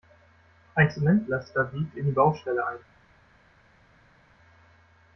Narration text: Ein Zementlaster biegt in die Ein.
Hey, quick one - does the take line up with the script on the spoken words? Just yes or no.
no